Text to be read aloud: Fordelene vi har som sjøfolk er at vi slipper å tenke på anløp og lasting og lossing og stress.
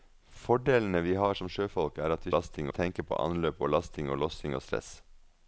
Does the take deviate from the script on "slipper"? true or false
true